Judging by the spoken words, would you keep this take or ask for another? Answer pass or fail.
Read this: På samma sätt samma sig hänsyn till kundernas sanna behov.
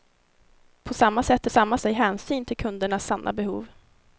pass